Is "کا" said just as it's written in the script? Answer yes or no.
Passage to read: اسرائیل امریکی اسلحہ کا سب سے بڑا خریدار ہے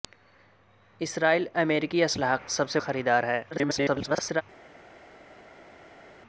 no